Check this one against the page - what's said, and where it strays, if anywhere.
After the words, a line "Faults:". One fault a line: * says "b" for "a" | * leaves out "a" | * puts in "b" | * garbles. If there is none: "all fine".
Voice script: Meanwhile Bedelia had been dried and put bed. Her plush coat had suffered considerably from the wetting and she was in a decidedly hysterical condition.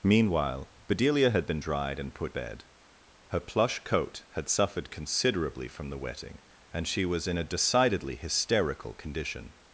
Meanwhile Bedelia had been dried and put bed. Her plush coat had suffered considerably from the wetting and she was in a decidedly hysterical condition.
Faults:
all fine